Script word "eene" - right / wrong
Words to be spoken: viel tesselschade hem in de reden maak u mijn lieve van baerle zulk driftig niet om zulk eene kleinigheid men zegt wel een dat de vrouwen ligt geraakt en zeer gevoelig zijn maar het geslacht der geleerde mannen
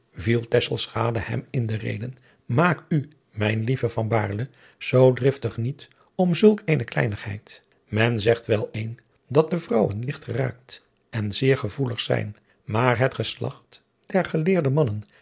right